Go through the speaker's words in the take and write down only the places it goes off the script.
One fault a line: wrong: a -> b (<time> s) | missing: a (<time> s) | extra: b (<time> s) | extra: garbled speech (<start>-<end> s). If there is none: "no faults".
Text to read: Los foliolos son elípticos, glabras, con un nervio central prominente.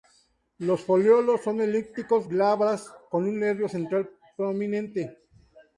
no faults